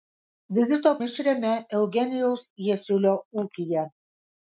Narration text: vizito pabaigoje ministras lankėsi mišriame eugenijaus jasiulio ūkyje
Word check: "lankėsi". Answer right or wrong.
wrong